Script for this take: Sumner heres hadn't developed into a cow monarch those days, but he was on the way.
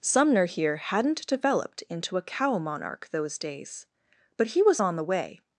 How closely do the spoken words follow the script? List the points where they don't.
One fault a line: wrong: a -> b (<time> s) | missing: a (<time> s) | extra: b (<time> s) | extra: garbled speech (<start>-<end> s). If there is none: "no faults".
wrong: heres -> here (0.5 s)